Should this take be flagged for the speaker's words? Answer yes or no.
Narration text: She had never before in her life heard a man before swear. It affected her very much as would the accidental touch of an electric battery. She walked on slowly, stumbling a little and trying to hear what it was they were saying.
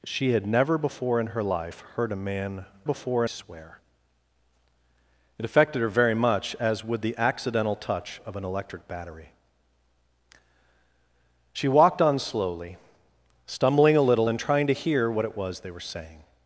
no